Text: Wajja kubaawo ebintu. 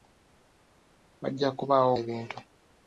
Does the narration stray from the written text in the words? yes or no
no